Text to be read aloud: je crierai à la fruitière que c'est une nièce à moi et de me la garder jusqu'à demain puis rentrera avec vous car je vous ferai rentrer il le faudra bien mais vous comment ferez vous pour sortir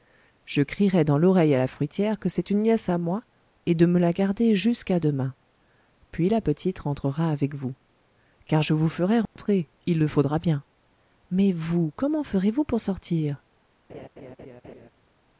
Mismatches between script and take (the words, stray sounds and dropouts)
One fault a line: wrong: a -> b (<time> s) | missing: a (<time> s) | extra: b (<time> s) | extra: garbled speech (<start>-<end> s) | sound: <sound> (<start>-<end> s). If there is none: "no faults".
extra: dans l'oreille (1.0 s)
extra: la petite (6.3 s)
sound: dropout (9.3-9.4 s)
sound: laugh (13.9-14.9 s)